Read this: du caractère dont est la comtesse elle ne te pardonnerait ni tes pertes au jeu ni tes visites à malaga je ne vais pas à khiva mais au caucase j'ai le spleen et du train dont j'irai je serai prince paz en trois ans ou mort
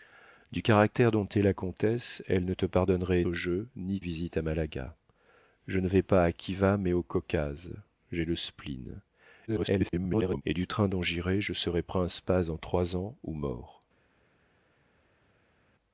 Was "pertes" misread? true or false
true